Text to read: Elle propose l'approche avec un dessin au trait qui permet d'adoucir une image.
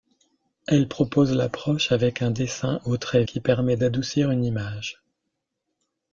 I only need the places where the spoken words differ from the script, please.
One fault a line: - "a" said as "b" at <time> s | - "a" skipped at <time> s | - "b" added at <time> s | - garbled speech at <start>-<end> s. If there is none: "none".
none